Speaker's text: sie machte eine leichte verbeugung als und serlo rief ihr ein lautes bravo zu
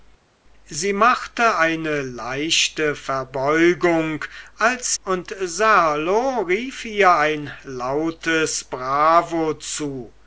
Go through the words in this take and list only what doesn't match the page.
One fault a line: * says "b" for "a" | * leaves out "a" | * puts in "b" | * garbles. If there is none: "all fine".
all fine